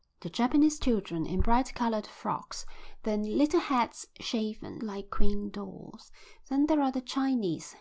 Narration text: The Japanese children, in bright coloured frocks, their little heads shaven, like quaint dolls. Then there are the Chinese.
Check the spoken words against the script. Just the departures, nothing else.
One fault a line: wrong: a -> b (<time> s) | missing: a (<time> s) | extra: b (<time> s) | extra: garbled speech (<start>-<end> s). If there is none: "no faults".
no faults